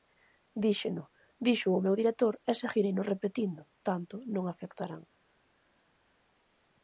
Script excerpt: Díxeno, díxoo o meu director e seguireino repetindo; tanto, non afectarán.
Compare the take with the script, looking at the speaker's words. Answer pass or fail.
pass